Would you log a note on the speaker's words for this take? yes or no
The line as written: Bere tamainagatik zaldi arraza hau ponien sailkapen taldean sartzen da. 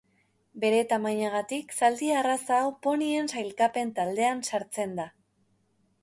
no